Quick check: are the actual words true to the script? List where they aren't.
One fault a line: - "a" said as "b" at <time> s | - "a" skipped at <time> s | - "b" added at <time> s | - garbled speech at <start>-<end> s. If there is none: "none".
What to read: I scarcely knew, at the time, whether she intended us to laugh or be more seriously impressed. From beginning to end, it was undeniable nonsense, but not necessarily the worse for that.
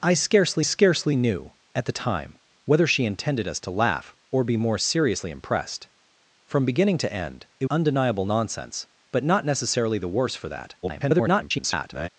- "scarcely" added at 0.6 s
- "was" skipped at 7.7 s
- garbled speech at 10.8-12.1 s